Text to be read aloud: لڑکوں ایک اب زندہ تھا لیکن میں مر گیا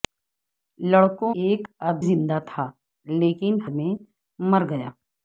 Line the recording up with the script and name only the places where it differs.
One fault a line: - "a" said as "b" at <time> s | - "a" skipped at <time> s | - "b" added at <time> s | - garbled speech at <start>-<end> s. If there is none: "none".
none